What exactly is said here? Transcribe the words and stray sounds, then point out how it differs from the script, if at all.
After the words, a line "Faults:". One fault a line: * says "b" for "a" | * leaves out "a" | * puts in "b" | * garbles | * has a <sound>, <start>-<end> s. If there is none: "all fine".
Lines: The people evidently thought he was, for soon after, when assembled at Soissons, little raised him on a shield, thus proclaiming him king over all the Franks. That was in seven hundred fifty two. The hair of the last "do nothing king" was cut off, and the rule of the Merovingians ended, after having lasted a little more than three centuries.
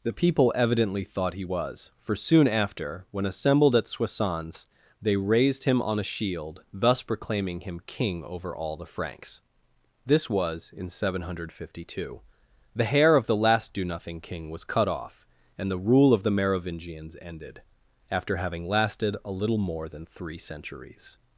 The people evidently thought he was, for soon after, when assembled at Soissons, they raised him on a shield, thus proclaiming him king over all the Franks. This was in seven hundred fifty two. The hair of the last "do nothing king" was cut off, and the rule of the Merovingians ended, after having lasted a little more than three centuries.
Faults:
* says "they" for "little"
* says "This" for "That"